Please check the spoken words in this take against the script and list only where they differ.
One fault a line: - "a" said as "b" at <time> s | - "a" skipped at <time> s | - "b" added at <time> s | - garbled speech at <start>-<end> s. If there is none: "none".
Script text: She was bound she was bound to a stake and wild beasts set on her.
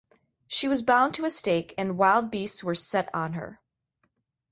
- "she was bound" skipped at 1.1 s
- "were" added at 2.6 s